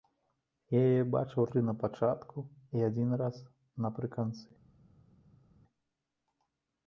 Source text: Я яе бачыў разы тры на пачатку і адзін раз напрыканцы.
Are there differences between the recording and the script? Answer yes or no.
yes